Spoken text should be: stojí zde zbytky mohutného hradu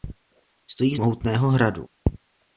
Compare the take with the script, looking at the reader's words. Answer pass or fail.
fail